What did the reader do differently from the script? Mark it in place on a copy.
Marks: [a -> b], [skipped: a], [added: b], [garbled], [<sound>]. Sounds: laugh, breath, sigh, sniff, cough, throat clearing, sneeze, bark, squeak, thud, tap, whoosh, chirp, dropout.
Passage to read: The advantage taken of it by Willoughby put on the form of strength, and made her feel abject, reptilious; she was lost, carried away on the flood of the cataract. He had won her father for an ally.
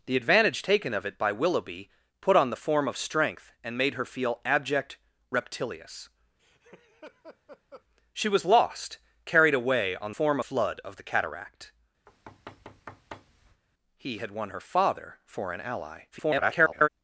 The advantage taken of it by Willoughby put on the form of strength, and made her feel abject, reptilious; [laugh] she was lost, carried away on [the -> form] flood of the cataract. [thud] He had won her father for an ally. [garbled]